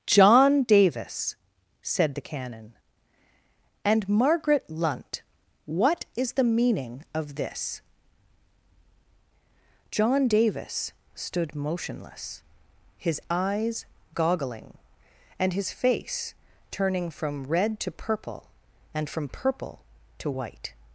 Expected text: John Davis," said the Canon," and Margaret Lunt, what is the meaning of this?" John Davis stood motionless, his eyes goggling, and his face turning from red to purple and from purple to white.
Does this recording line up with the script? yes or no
yes